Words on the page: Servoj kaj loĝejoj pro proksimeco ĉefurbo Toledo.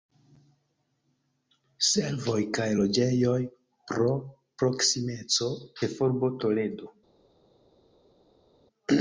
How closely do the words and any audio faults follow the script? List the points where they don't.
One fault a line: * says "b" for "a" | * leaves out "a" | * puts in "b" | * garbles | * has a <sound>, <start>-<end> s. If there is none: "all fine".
all fine